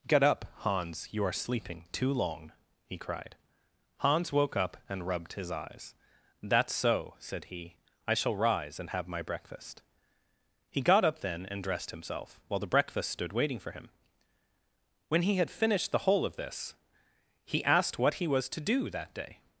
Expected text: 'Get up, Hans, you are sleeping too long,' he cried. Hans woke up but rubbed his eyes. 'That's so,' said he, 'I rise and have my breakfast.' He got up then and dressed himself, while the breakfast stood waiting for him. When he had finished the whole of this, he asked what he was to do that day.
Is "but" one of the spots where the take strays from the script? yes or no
yes